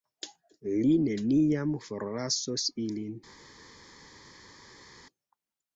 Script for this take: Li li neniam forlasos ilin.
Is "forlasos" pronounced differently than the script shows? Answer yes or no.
no